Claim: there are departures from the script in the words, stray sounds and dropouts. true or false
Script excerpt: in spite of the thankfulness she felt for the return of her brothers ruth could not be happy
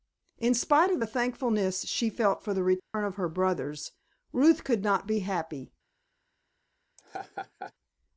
true